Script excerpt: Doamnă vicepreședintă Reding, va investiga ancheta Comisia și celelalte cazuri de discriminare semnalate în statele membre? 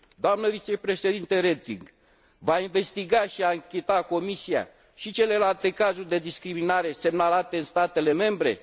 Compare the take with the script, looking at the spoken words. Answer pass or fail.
fail